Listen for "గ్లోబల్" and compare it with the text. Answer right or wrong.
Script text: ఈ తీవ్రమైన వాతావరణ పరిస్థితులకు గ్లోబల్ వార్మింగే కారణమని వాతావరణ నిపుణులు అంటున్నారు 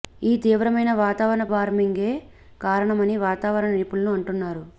wrong